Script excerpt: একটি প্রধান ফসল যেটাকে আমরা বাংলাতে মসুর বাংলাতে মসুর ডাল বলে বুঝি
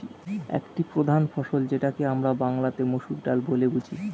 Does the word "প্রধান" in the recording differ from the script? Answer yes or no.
no